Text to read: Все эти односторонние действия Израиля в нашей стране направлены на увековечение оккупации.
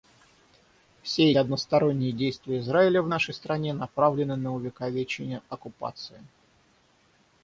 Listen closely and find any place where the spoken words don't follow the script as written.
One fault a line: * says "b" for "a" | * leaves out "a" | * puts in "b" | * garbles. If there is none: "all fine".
* leaves out "эти"